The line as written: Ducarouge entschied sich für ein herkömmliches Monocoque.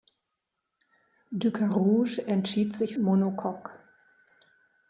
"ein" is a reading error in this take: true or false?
true